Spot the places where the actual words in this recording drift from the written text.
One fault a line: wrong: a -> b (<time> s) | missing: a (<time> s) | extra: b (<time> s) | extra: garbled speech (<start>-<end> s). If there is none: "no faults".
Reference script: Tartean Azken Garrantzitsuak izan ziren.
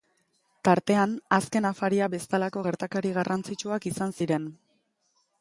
extra: Afaria bezalako gertakari (1.7 s)